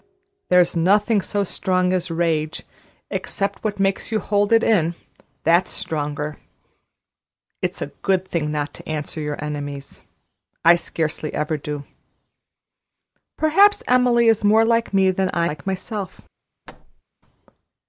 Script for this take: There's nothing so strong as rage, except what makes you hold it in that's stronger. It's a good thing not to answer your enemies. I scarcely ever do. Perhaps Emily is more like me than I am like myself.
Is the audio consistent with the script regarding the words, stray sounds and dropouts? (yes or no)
no